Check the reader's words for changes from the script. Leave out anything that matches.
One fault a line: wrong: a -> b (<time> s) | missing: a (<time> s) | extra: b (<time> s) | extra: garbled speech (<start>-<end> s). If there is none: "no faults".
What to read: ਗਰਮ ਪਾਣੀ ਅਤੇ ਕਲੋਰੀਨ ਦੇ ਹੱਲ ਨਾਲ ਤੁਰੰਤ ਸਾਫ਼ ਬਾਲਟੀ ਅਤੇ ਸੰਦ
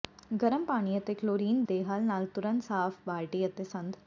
no faults